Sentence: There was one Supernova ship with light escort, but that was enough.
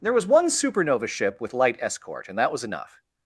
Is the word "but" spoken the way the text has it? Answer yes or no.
no